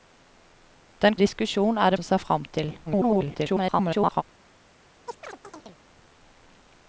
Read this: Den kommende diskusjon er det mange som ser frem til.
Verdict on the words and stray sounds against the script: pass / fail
fail